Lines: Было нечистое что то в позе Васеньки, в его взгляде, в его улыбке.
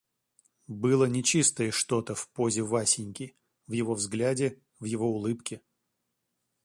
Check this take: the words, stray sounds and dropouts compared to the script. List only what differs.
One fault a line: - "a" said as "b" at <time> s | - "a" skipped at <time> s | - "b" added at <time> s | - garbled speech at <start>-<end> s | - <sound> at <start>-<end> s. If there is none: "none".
none